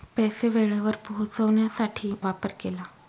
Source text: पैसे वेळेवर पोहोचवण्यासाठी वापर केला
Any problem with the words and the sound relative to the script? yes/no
no